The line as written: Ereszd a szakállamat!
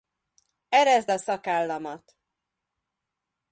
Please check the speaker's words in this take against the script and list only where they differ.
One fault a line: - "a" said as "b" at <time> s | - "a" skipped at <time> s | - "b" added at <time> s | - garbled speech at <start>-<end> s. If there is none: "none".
none